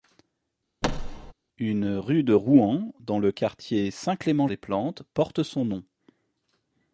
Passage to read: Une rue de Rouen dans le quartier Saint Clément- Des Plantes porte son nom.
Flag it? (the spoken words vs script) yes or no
no